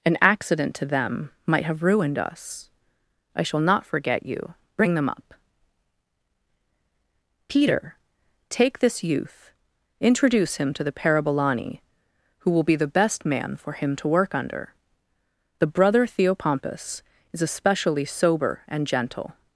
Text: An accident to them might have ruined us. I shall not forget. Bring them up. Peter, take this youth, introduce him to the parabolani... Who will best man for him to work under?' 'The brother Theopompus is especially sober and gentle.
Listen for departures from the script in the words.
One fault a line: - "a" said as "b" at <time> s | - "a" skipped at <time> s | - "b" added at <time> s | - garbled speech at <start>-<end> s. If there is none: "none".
- "you" added at 4.2 s
- "be the" added at 12.6 s